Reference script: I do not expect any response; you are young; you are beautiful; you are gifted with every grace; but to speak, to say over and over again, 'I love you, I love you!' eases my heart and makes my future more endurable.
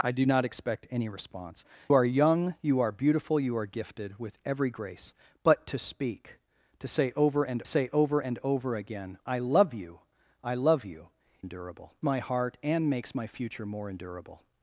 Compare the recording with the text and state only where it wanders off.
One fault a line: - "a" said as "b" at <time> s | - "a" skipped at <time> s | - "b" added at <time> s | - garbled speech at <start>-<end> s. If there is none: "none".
- "you" skipped at 1.6 s
- "say" added at 7.7 s
- "and over" added at 8.2 s
- "eases" said as "endurable" at 11.4 s